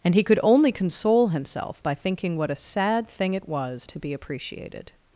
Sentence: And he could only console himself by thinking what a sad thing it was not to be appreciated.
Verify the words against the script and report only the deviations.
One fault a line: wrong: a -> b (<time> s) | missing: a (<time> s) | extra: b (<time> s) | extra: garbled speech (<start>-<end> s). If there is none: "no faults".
missing: not (3.9 s)